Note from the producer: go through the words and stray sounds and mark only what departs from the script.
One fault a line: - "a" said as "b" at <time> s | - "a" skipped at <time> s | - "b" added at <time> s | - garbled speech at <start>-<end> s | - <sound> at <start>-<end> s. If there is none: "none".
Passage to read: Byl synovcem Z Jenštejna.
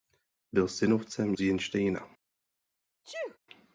- sneeze at 3.0-3.4 s